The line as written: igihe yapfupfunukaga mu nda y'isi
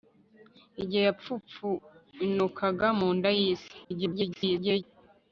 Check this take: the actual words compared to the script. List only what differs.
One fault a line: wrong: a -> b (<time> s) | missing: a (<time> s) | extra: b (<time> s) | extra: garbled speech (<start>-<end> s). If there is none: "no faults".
extra: garbled speech (3.8-4.8 s)